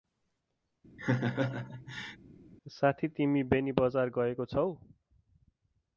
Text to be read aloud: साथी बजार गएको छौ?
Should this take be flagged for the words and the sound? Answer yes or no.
yes